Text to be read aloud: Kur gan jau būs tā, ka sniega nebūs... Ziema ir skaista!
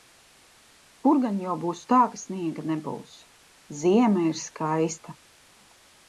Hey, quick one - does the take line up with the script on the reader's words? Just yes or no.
yes